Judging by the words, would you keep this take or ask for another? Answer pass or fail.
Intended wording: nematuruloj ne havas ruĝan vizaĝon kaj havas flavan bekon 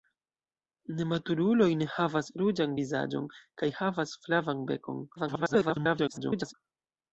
fail